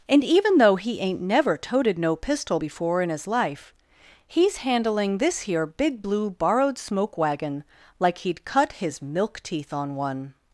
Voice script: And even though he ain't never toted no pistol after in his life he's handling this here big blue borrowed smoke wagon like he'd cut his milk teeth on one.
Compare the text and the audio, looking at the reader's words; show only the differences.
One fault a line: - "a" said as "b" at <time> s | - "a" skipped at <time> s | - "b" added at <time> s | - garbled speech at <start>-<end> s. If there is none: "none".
- "after" said as "before" at 2.5 s